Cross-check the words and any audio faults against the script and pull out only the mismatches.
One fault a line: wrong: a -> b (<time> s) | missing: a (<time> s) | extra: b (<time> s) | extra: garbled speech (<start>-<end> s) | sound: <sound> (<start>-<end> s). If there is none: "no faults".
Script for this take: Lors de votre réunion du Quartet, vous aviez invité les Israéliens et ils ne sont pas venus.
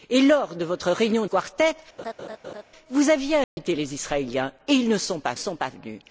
missing: du (1.2 s)
sound: laugh (2.0-2.6 s)
sound: dropout (3.4-3.6 s)
extra: sont pas (5.4 s)